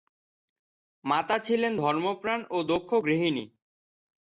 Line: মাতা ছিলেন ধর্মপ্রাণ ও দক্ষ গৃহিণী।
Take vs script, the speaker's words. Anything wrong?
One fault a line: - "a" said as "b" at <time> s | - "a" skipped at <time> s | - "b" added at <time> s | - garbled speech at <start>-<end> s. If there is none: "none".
none